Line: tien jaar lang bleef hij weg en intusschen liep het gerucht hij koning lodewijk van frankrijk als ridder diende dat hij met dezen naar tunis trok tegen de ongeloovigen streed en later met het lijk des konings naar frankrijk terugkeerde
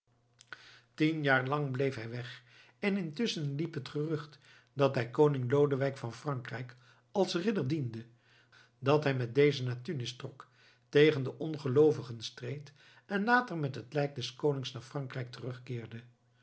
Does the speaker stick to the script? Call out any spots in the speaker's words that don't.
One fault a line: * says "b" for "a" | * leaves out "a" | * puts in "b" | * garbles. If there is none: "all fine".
* puts in "dat"